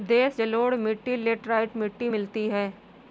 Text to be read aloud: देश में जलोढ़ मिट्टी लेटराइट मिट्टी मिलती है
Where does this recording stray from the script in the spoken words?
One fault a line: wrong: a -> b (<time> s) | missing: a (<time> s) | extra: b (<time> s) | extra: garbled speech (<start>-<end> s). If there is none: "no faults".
missing: में (0.4 s)